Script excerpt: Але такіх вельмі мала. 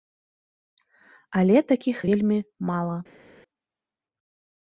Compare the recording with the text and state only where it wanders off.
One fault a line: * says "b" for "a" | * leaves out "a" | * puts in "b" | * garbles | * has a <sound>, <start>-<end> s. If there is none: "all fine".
all fine